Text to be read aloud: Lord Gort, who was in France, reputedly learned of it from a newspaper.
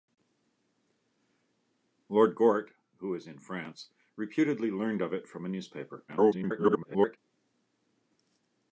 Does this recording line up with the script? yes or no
no